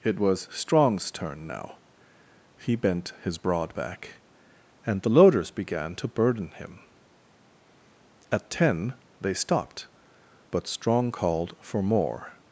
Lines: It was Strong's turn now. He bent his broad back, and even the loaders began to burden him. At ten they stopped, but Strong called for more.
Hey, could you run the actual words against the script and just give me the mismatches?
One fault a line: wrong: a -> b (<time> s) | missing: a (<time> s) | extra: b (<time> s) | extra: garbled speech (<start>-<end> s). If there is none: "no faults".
missing: even (5.0 s)